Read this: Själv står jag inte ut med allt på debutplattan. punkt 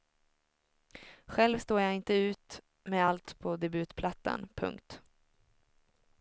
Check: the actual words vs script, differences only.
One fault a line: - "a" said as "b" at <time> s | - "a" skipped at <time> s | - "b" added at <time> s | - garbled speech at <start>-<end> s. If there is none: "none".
none